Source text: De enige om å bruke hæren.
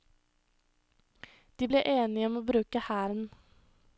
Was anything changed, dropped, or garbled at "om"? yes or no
no